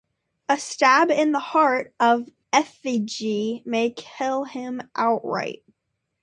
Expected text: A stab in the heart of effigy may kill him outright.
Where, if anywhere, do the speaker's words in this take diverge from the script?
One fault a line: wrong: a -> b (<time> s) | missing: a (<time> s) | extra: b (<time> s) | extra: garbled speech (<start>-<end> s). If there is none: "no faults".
no faults